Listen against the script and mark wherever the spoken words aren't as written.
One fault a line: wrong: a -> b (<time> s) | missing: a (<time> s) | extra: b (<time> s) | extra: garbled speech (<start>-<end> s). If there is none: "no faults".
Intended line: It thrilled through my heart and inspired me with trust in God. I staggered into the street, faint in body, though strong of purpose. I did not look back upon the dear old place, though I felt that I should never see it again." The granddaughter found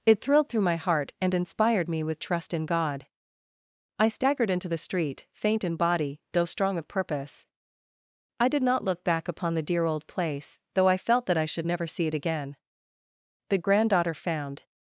no faults